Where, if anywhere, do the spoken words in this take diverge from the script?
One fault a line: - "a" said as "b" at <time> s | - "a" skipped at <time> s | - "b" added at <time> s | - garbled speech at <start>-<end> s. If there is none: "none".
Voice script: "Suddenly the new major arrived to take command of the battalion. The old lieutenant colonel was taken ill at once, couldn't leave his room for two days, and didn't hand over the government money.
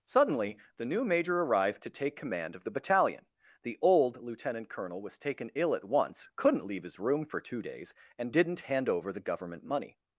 none